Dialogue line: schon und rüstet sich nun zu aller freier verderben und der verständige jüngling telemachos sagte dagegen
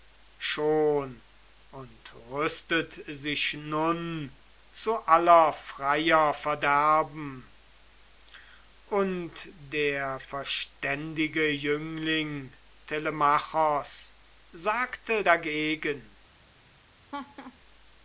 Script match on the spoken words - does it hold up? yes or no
yes